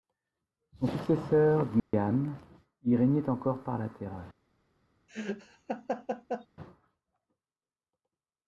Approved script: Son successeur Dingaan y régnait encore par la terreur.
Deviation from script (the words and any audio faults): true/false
true